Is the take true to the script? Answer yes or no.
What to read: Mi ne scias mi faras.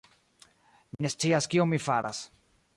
no